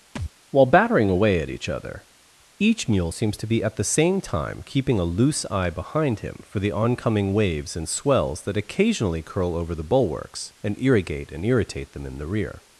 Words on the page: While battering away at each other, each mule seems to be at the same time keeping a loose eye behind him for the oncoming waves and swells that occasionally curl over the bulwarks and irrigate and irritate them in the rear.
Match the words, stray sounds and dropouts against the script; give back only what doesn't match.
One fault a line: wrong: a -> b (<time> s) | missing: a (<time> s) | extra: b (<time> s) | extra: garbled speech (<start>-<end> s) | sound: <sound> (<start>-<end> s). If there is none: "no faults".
sound: thud (0.2-0.3 s)